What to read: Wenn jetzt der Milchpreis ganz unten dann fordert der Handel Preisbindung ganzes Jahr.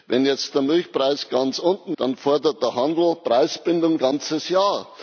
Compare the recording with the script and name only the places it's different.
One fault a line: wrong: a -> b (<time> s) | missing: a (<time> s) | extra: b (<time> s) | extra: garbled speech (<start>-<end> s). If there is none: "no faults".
no faults